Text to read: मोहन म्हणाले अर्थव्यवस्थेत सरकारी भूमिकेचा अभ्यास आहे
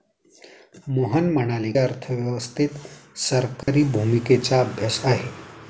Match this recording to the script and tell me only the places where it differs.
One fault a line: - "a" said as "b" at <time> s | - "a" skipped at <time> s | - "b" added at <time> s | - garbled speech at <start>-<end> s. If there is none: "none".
none